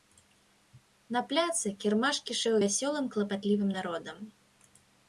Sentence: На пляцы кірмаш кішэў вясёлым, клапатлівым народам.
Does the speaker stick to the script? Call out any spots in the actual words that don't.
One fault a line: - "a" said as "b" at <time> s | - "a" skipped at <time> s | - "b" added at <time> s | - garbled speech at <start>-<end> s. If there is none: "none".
none